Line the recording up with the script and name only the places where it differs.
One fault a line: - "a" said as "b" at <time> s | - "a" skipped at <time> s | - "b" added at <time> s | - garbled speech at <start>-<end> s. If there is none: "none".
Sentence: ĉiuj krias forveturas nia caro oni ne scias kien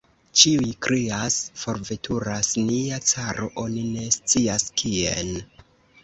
none